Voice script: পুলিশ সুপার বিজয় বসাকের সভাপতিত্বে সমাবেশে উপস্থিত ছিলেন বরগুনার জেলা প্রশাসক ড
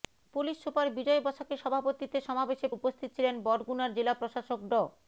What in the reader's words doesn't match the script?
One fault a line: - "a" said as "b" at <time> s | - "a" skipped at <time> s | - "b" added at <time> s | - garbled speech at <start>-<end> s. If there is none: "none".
none